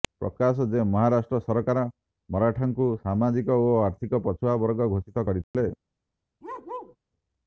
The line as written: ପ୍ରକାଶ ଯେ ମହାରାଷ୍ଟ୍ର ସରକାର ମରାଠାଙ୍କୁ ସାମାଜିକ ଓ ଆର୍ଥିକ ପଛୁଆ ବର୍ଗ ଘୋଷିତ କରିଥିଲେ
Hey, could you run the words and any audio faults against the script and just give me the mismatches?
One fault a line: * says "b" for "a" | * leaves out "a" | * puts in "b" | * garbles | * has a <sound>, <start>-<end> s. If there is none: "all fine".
* has a dropout, 5.4-5.5 s
* has a bark, 6.4-7.0 s